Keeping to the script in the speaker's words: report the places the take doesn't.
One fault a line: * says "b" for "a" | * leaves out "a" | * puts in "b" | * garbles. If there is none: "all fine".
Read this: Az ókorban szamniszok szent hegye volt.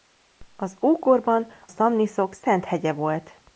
all fine